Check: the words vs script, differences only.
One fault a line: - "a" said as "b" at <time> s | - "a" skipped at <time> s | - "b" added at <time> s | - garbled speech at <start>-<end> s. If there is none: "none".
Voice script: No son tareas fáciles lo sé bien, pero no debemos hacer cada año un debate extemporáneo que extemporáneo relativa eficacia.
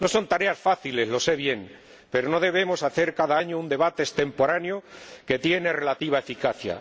- "extemporáneo" said as "tiene" at 5.4 s